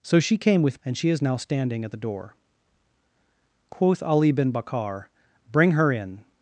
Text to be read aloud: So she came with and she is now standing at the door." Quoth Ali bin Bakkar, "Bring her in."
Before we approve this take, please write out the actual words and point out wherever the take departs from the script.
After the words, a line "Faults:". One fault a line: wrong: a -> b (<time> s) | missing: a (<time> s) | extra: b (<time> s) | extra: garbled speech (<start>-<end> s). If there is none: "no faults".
So she came with and she is now standing at the door." Quoth Ali bin Bakkar, "Bring her in."
Faults:
no faults